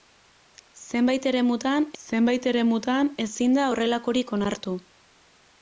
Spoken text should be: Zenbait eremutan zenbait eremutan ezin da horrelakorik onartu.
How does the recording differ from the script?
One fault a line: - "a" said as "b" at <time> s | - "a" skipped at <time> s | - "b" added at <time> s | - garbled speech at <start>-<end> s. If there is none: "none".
none